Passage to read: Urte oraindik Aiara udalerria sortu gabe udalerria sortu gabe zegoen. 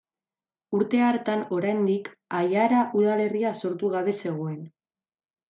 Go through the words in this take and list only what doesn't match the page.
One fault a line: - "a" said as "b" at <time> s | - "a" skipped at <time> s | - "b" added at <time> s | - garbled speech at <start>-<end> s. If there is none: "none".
- "hartan" added at 1.1 s
- "udalerria sortu gabe" skipped at 4.2 s